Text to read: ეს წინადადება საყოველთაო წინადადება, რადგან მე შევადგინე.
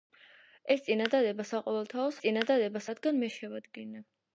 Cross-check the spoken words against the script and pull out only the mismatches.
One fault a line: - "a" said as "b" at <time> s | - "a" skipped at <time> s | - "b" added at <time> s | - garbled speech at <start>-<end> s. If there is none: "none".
none